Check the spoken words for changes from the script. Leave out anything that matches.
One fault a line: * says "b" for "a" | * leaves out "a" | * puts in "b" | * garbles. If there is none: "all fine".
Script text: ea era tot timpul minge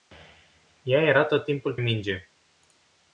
all fine